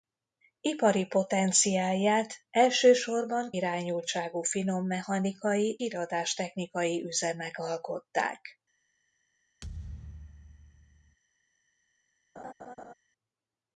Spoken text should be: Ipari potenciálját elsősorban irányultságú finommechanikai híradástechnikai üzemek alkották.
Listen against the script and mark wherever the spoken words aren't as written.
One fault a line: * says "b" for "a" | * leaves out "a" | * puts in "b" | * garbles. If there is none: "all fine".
all fine